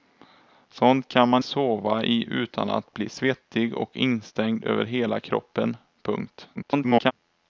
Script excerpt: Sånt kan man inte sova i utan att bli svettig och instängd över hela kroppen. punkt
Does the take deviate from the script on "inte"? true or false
true